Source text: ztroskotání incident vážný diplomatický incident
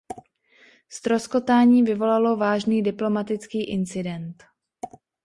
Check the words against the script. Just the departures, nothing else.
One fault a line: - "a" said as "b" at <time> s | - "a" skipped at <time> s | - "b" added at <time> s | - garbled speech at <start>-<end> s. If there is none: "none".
- "incident" said as "vyvolalo" at 1.8 s